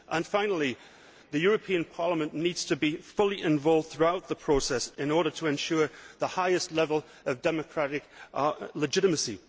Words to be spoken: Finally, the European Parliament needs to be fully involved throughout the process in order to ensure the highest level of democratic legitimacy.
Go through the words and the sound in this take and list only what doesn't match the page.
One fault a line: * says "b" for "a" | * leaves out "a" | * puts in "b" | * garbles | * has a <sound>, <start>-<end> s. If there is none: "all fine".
all fine